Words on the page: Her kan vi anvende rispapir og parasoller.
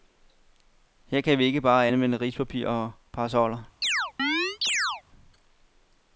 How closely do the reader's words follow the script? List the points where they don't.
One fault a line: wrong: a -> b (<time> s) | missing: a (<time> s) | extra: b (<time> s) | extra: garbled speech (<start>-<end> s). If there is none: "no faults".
extra: ikke bare (1.4 s)